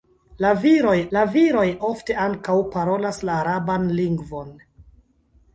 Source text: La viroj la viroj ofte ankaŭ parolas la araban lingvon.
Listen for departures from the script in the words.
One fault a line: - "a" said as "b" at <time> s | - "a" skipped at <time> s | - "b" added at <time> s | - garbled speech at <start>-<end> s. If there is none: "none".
none